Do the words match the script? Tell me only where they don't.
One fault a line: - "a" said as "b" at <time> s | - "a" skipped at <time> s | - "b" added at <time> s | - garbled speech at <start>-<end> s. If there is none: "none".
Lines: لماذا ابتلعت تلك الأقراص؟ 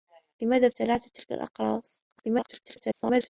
- garbled speech at 2.1-3.3 s